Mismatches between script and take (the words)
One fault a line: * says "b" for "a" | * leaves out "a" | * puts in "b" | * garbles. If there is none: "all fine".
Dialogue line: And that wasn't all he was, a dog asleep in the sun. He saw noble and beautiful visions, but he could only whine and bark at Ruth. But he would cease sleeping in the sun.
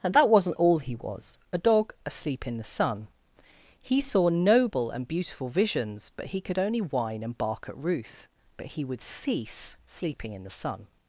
all fine